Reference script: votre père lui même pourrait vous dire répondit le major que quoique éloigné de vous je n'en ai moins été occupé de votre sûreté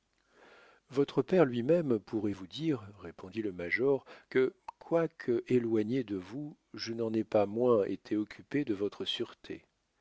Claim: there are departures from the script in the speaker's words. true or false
true